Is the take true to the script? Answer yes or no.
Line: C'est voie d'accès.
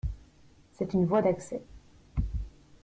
no